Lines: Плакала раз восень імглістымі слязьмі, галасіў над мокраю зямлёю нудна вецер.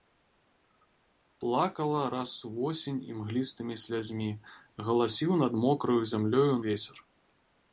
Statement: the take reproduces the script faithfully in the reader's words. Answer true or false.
false